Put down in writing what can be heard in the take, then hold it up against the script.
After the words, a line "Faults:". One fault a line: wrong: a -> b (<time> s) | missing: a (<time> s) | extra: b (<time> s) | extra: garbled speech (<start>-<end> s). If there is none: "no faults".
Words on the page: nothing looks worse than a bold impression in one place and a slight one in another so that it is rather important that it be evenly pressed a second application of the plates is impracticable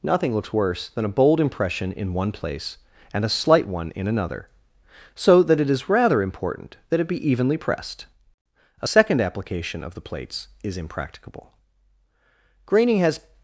nothing looks worse than a bold impression in one place and a slight one in another so that it is rather important that it be evenly pressed a second application of the plates is impracticable graining has
Faults:
extra: graining has (12.6 s)